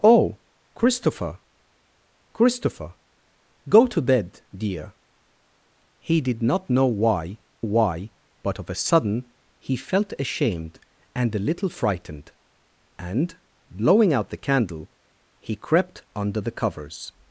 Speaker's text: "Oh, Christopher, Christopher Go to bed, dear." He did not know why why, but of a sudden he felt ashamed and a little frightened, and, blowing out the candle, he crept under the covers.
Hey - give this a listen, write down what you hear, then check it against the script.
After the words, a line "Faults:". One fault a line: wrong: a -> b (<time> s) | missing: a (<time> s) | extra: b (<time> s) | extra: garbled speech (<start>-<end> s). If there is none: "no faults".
"Oh, Christopher, Christopher Go to bed, dear." He did not know why why, but of a sudden he felt ashamed and a little frightened, and, blowing out the candle, he crept under the covers.
Faults:
no faults